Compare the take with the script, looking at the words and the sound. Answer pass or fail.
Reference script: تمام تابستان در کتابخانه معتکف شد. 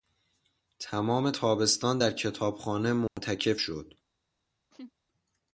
fail